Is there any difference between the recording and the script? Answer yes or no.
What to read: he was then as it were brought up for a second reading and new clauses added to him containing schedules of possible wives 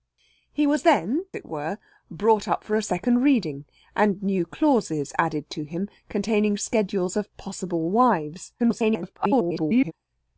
yes